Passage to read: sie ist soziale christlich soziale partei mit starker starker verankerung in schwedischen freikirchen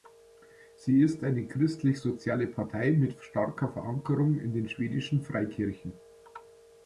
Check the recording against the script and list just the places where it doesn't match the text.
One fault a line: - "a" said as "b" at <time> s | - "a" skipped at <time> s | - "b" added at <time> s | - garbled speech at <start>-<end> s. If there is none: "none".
- "soziale" said as "eine" at 1.2 s
- "starker" skipped at 3.7 s
- "den" added at 4.5 s